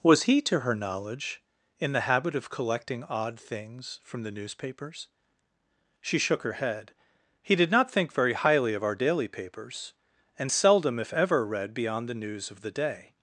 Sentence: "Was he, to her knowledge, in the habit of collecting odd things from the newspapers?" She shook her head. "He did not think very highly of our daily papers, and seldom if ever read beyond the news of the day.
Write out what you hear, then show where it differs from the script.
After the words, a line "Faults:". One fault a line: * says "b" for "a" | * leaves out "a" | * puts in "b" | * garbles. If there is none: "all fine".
"Was he, to her knowledge, in the habit of collecting odd things from the newspapers?" She shook her head. "He did not think very highly of our daily papers, and seldom if ever read beyond the news of the day.
Faults:
all fine